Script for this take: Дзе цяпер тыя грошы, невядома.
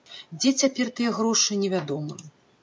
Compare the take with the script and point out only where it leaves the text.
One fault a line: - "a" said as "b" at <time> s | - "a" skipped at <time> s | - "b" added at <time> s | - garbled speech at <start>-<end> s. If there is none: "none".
none